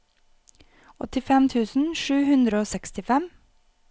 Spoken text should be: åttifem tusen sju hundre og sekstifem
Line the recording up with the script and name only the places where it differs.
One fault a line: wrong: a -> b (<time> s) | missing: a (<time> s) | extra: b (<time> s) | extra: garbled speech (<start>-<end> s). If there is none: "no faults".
no faults